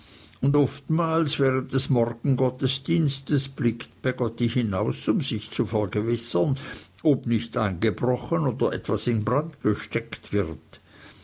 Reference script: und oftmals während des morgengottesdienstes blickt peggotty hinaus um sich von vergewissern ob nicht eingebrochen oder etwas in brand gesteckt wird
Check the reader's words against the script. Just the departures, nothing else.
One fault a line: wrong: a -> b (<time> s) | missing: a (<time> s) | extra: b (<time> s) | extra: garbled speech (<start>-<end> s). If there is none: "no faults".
wrong: von -> zu (5.5 s)